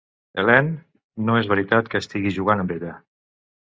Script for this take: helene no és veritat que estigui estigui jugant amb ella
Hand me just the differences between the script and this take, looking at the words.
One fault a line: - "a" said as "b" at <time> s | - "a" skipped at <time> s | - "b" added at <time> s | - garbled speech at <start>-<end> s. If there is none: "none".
- "estigui" skipped at 2.3 s